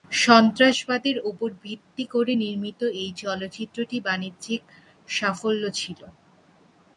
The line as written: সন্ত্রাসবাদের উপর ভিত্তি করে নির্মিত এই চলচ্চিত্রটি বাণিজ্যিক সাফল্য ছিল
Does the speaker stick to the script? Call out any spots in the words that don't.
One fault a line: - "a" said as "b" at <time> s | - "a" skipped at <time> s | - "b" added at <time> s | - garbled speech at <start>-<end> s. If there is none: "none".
none